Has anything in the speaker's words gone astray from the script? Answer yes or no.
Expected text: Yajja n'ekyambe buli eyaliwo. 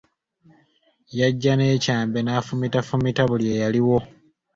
yes